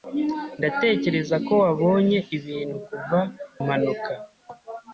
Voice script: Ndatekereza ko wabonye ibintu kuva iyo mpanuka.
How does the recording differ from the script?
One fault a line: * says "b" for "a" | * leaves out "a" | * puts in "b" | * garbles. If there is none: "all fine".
* leaves out "iyo"